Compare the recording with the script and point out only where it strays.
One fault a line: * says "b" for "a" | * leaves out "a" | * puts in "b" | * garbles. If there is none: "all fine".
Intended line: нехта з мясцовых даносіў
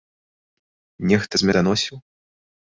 * leaves out "мясцовых"